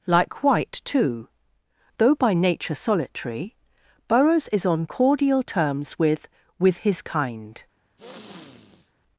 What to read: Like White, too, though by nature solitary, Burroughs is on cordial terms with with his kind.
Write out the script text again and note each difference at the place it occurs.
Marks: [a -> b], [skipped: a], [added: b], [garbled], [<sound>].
Like White, too, though by nature solitary, Burroughs is on cordial terms with with his kind. [sniff]